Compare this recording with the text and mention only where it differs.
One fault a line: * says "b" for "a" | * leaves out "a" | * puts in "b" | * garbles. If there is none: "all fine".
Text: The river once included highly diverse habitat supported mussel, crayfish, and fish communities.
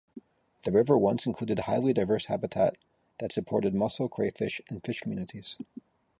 * puts in "that"